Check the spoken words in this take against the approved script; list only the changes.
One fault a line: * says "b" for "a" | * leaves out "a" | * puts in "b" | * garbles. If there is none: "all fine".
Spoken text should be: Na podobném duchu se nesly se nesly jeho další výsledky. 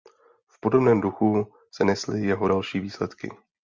* says "V" for "Na"
* leaves out "se nesly"